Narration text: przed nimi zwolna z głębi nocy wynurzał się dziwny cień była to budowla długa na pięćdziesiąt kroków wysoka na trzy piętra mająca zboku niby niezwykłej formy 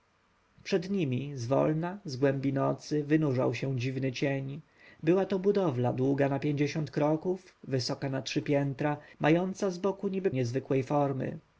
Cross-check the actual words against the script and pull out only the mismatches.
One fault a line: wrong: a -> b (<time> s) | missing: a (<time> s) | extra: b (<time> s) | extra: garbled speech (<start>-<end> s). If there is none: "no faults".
no faults